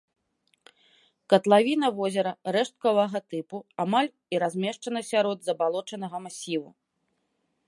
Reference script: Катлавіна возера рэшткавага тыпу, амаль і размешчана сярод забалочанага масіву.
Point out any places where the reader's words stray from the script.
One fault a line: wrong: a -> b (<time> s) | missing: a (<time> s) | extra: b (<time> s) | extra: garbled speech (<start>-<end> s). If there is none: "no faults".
no faults